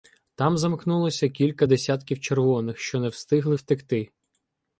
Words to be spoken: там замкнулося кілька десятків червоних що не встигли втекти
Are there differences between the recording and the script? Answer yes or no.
no